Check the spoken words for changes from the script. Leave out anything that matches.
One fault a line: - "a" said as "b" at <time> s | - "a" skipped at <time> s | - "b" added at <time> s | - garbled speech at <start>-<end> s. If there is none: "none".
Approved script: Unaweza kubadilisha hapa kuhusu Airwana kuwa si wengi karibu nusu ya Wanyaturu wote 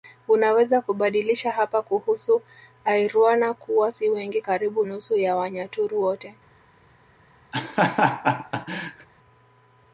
none